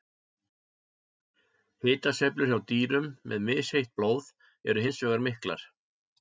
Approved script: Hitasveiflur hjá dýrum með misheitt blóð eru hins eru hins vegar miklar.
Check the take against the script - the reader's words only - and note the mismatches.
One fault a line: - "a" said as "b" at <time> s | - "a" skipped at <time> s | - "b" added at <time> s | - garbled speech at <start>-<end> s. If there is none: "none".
- "eru hins" skipped at 5.0 s